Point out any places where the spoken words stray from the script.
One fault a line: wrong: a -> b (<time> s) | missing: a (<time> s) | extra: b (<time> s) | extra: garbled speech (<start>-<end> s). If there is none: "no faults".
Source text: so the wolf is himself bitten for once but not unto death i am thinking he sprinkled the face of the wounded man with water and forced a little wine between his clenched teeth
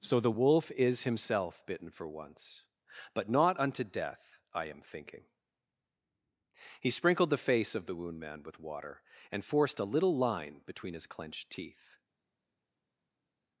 wrong: wounded -> wound (7.9 s)
wrong: wine -> line (10.2 s)